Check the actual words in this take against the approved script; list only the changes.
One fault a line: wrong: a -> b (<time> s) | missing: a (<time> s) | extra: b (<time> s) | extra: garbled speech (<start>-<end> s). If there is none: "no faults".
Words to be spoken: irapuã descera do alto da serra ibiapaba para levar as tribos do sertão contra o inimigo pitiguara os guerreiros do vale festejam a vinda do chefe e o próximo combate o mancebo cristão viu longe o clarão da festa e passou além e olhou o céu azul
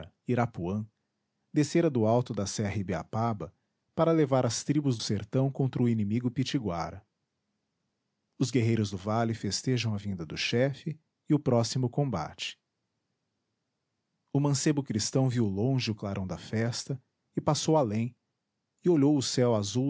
missing: do (5.0 s)